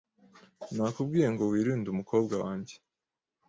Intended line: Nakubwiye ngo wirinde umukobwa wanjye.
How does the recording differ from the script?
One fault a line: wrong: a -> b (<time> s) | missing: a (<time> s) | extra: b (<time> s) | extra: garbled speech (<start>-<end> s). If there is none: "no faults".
no faults